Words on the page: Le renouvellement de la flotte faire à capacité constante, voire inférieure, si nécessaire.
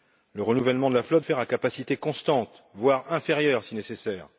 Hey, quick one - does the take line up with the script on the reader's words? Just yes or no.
yes